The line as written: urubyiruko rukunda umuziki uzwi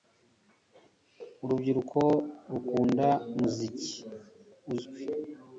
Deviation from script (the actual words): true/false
false